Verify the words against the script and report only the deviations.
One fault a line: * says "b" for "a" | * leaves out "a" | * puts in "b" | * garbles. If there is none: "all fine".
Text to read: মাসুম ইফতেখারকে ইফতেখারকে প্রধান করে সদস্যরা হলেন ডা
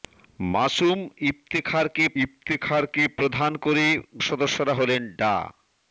all fine